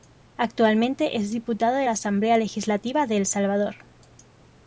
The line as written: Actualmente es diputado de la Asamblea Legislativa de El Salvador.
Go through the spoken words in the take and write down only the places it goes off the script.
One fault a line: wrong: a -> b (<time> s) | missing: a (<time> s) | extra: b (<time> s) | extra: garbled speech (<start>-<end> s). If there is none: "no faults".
no faults